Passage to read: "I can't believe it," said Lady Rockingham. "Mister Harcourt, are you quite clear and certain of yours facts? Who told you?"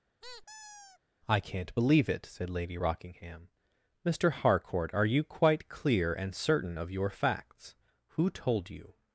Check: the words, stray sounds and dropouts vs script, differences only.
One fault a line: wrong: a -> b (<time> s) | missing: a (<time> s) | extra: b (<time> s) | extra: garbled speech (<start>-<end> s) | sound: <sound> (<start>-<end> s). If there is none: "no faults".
sound: squeak (0.2-1.0 s)
wrong: yours -> your (6.9 s)